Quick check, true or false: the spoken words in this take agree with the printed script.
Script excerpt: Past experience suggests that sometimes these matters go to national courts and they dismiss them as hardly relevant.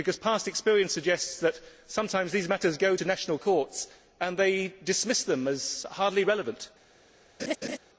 true